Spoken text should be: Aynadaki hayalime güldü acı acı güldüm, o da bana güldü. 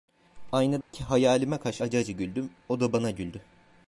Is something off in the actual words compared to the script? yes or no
yes